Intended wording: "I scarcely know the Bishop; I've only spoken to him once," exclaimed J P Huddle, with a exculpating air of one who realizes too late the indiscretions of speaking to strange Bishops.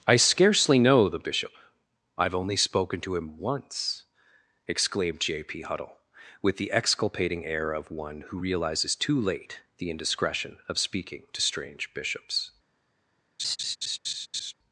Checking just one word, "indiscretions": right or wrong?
wrong